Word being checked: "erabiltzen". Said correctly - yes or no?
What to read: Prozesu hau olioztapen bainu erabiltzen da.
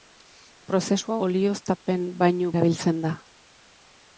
yes